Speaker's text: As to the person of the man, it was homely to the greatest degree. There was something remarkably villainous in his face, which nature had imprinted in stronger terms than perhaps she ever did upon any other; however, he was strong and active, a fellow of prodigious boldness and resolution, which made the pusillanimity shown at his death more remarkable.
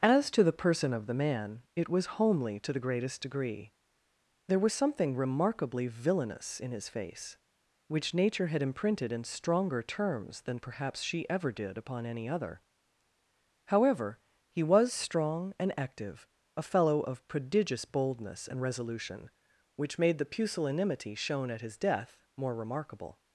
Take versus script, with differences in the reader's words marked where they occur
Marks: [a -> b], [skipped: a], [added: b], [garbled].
As to the person of the man, it was homely to the greatest degree. There was something remarkably villainous in his face, which nature had imprinted in stronger terms than perhaps she ever did upon any other; however, he was strong and active, a fellow of prodigious boldness and resolution, which made the pusillanimity shown at his death more remarkable.